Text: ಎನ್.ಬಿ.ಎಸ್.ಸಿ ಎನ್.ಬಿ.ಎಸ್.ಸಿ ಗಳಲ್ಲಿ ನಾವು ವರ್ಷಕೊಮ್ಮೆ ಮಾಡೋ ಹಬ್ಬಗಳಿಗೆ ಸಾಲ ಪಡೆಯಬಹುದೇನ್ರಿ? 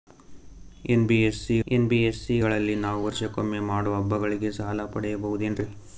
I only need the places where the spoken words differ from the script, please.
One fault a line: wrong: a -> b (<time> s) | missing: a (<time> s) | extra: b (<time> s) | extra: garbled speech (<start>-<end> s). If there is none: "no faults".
no faults